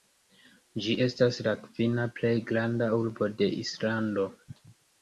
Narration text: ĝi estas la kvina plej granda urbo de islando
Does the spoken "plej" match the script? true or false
true